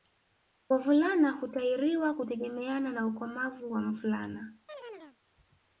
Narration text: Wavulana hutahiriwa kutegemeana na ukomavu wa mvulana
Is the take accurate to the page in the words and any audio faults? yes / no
no